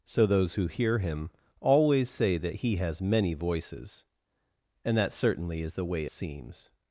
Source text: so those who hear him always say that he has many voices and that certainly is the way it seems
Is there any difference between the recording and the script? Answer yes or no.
yes